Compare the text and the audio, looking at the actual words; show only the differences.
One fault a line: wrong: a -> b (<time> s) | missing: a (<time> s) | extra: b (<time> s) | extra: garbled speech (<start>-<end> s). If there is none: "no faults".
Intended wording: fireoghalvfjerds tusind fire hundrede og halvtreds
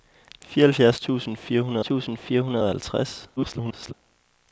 extra: tusind fire hundrede (1.8 s)
extra: garbled speech (3.4-3.9 s)